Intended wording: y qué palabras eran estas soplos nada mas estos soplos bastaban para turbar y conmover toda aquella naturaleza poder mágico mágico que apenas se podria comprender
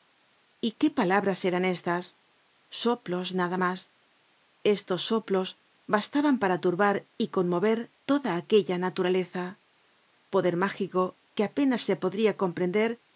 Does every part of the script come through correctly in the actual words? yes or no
no